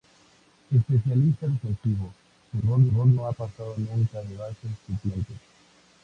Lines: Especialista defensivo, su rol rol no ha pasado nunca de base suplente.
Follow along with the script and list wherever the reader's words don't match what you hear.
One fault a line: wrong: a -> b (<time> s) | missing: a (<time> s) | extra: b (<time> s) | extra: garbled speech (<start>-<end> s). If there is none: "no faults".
no faults